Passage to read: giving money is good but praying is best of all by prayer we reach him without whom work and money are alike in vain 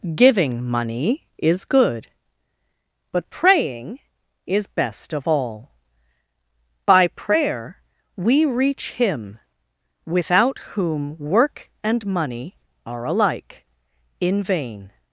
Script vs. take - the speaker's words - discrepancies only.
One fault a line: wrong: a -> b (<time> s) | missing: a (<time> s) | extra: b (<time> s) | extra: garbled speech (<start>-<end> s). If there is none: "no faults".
no faults